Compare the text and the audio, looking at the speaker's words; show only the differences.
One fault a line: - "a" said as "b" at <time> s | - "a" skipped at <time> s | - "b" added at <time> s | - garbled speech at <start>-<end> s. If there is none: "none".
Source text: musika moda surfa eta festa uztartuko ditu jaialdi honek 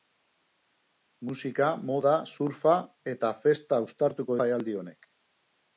- "ditu" skipped at 4.4 s